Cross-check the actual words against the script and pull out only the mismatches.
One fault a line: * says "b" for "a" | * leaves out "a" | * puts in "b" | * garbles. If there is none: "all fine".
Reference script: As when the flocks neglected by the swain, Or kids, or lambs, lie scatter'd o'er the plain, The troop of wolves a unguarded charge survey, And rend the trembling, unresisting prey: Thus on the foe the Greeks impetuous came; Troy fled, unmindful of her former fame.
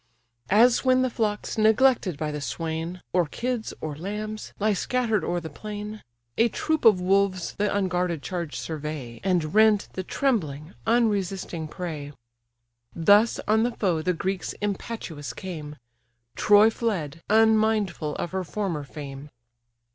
* says "A" for "The"
* says "the" for "a"